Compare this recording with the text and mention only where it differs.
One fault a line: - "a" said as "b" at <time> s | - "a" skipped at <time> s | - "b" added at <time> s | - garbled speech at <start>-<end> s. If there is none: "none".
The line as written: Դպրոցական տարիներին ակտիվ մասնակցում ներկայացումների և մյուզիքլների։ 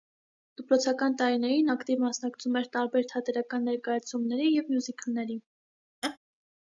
- "էր տարբեր թատերական" added at 2.6 s